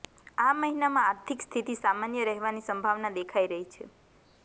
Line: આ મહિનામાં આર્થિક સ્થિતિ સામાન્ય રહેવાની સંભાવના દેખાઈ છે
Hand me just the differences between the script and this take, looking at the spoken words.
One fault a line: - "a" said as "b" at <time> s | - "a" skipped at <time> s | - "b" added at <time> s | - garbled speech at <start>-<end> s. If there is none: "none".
- "રહી" added at 3.5 s